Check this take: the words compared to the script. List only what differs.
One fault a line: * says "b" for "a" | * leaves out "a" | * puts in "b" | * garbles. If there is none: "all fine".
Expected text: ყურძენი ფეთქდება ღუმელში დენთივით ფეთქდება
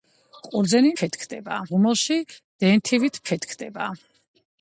all fine